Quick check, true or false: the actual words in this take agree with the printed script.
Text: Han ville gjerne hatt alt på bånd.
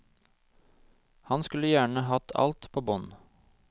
false